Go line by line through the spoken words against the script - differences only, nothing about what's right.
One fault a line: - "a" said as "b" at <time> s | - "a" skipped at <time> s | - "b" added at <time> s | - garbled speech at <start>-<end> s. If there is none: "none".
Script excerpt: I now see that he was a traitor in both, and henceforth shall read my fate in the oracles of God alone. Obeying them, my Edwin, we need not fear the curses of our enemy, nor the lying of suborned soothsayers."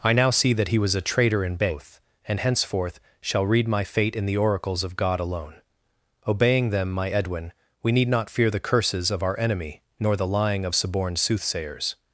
none